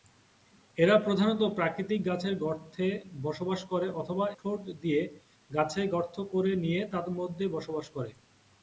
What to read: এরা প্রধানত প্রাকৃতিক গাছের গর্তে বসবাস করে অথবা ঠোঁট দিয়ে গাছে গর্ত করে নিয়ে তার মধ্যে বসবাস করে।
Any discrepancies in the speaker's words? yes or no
no